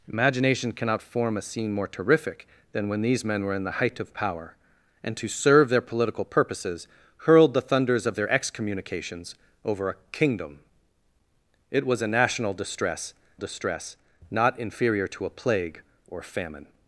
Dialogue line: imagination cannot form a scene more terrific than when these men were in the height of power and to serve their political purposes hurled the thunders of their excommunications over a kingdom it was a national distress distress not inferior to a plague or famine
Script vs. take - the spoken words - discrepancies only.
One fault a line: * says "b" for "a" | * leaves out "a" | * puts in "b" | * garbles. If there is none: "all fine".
all fine